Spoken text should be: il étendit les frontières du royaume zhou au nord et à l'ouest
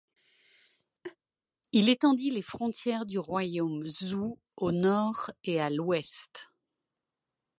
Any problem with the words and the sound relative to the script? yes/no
yes